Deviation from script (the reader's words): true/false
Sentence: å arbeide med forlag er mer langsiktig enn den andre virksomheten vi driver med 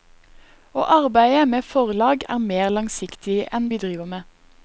true